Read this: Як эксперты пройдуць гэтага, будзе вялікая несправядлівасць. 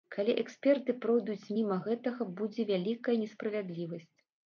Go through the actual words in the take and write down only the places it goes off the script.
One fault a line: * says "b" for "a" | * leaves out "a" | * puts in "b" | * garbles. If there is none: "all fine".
* says "Калі" for "Як"
* puts in "міма"